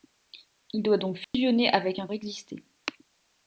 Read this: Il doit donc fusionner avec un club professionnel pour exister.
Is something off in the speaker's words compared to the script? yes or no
yes